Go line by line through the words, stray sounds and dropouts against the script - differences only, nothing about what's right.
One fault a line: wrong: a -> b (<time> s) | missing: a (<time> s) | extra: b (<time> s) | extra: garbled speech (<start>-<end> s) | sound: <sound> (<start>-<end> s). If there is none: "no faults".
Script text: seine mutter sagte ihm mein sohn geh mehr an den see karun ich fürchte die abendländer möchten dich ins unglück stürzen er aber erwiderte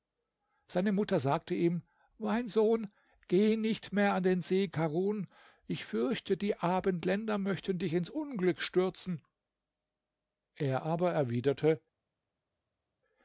extra: nicht (3.6 s)